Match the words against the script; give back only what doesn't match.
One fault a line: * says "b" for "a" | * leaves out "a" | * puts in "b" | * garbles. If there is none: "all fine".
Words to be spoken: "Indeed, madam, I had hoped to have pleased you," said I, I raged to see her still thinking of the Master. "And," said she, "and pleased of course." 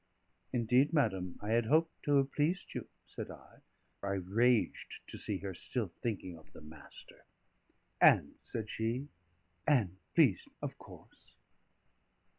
all fine